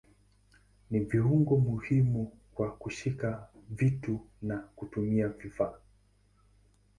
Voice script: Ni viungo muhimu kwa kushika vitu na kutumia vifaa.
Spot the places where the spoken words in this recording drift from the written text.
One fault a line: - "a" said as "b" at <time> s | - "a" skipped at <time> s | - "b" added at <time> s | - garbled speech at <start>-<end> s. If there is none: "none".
none